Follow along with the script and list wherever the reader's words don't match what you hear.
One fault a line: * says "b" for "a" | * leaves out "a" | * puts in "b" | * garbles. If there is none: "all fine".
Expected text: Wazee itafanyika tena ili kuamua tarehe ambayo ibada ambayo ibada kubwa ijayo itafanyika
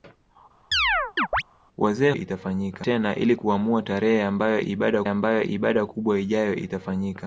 all fine